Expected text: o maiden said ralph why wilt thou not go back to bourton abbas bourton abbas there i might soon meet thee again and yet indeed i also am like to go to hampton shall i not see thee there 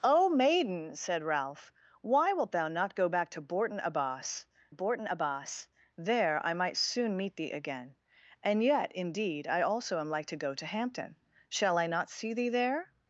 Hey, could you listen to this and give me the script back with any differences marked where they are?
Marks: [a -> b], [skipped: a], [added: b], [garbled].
o maiden said ralph why wilt thou not go back to bourton abbas bourton abbas there i might soon meet thee again and yet indeed i also am like to go to hampton shall i not see thee there